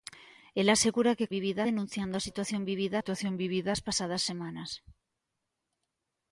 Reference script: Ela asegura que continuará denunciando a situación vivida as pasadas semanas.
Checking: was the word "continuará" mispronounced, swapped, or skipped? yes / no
yes